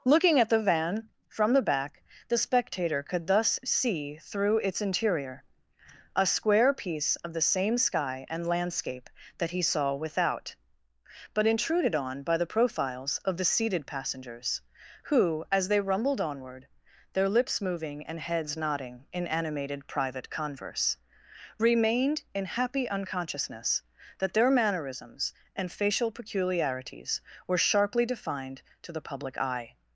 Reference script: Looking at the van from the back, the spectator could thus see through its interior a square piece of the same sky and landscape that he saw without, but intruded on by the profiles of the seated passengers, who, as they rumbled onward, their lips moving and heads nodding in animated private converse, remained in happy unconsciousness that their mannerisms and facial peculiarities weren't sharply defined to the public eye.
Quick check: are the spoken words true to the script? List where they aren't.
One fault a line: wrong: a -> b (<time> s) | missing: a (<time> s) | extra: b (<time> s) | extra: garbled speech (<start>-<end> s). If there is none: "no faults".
wrong: weren't -> were (27.4 s)